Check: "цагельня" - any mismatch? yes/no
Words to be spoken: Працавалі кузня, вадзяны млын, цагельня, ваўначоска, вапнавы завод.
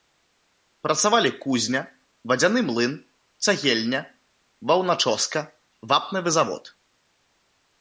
no